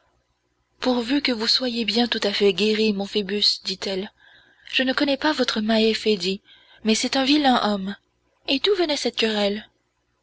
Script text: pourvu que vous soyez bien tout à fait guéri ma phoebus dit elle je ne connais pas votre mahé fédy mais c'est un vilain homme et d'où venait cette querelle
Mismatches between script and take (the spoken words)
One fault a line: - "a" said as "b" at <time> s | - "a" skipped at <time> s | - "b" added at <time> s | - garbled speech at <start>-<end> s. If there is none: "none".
- "ma" said as "mon" at 2.9 s